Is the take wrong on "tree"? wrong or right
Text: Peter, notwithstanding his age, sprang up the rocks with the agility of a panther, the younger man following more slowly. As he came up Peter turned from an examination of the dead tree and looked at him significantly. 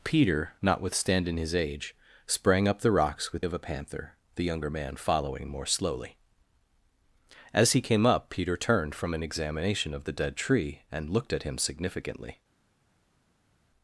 right